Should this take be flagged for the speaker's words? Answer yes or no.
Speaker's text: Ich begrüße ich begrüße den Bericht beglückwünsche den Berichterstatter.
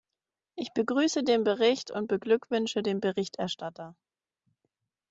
yes